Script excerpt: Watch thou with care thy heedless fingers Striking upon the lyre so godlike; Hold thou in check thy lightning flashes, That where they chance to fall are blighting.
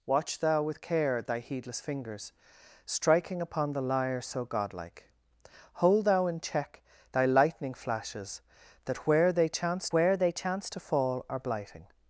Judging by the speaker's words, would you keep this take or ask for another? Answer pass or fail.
fail